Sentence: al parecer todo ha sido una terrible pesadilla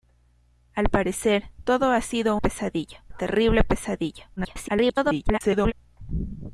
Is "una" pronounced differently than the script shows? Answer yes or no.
yes